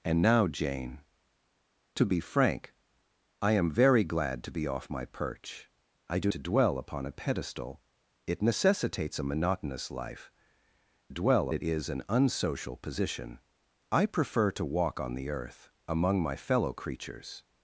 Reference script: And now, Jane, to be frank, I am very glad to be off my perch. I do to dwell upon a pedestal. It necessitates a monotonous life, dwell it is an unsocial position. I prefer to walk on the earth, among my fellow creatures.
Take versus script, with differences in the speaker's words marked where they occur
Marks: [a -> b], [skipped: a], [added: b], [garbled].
And now, Jane, to be frank, I am very glad to be off my perch. I do to dwell upon a pedestal. It necessitates a monotonous life, dwell it is an unsocial position. I prefer to walk on the earth, among my fellow creatures.